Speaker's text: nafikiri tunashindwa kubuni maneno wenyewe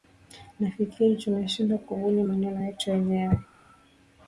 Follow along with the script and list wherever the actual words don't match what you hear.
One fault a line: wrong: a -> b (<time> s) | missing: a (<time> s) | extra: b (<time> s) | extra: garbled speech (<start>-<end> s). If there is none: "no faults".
extra: yetu (2.7 s)